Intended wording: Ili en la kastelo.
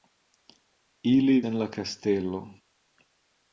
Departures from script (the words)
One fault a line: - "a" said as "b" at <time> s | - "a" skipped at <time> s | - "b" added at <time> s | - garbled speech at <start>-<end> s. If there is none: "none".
none